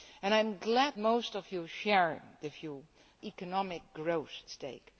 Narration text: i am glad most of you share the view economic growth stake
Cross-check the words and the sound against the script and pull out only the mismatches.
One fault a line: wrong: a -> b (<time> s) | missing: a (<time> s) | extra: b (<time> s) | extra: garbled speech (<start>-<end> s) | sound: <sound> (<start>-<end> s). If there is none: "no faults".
no faults